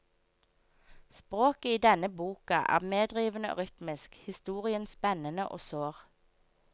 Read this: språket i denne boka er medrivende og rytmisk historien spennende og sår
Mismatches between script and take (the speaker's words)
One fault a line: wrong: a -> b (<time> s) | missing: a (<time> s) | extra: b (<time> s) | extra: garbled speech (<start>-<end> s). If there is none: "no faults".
no faults